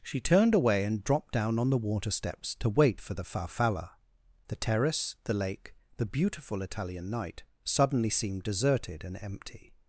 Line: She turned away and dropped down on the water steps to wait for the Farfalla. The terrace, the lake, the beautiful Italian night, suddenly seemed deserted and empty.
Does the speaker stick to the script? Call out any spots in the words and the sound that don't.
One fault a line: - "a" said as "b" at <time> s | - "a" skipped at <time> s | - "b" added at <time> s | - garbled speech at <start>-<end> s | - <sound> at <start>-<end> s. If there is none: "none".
none